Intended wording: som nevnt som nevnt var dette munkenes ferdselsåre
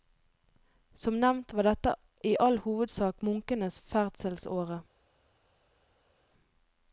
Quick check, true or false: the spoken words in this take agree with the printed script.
false